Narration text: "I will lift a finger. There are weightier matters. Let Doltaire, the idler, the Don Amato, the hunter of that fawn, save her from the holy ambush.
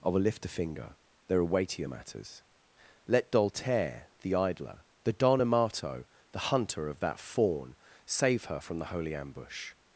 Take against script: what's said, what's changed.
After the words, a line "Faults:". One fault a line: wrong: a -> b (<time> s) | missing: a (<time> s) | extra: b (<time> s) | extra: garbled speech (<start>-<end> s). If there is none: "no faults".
"I will lift a finger. There are weightier matters. Let Doltaire, the idler, the Don Amato, the hunter of that fawn, save her from the holy ambush.
Faults:
no faults